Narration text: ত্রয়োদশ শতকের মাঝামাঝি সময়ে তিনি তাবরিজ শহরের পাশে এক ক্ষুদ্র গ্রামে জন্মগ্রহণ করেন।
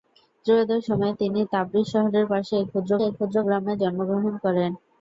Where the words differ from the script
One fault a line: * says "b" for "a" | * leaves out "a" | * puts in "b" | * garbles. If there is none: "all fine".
* leaves out "শতকের মাঝামাঝি"
* puts in "এক ক্ষুদ্র"